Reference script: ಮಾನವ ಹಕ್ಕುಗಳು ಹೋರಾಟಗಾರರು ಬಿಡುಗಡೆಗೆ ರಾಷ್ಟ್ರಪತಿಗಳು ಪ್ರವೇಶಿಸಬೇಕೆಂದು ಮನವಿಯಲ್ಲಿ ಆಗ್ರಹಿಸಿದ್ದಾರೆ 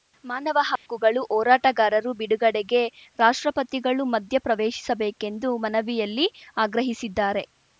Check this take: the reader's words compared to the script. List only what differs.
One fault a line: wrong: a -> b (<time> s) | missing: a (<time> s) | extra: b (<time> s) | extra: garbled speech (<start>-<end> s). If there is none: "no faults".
extra: ಮಧ್ಯ (4.2 s)